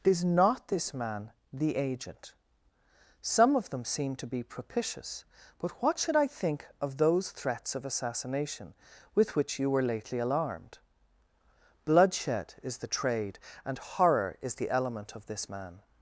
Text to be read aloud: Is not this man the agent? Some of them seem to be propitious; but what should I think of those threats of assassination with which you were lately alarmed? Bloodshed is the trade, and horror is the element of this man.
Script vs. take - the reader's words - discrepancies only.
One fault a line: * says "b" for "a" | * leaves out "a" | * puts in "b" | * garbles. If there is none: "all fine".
all fine